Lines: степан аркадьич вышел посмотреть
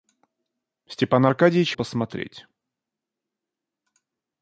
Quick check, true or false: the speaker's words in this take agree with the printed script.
false